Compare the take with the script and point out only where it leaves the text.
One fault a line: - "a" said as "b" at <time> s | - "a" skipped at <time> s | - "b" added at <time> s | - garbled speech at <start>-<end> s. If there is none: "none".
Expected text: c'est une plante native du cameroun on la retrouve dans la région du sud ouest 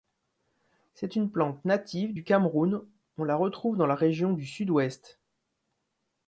none